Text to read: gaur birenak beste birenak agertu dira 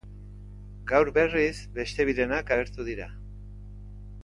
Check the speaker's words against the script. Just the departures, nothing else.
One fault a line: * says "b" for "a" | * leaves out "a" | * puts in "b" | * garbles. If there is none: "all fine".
* says "berriz" for "birenak"